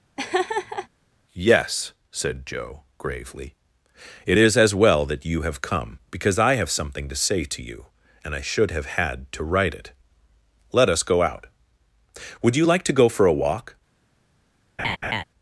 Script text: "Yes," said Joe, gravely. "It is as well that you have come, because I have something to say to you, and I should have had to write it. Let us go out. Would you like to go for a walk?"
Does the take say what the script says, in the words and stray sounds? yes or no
no